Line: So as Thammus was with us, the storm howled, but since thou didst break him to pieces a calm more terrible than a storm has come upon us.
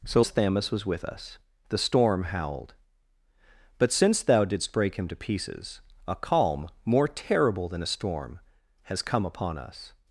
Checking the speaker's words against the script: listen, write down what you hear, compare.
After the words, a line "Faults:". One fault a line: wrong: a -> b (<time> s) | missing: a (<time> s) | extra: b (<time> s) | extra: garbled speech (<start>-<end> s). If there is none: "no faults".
So as Thammus was with us, the storm howled, but since thou didst break him to pieces a calm more terrible than a storm has come upon us.
Faults:
no faults